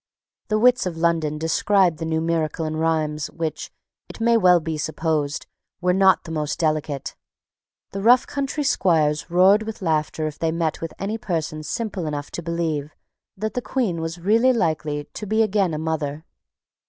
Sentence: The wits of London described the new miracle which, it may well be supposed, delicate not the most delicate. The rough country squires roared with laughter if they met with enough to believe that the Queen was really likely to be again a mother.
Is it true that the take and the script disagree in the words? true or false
true